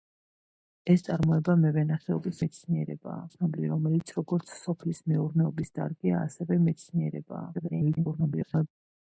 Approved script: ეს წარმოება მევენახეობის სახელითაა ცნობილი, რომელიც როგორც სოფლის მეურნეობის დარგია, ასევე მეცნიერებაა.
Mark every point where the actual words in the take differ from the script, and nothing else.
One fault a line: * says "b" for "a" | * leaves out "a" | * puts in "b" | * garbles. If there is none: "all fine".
* says "მეცნიერებაა" for "სახელითაა"
* garbles